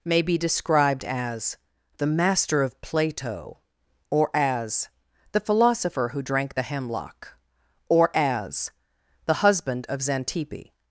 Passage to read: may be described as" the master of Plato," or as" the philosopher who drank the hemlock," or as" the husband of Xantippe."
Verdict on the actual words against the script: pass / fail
pass